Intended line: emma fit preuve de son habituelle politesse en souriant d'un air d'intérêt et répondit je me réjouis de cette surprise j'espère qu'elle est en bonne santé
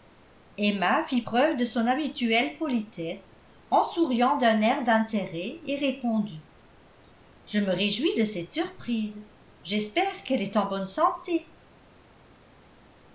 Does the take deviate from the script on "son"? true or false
false